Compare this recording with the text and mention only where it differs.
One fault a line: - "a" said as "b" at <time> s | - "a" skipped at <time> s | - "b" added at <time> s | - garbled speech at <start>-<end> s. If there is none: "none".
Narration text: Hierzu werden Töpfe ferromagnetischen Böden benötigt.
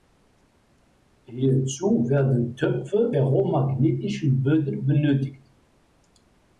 none